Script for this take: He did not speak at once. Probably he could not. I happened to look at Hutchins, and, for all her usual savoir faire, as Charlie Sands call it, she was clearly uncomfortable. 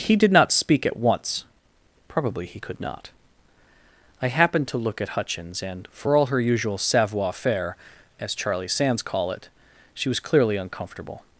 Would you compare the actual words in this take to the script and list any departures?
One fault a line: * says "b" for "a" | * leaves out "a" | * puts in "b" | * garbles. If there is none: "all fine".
all fine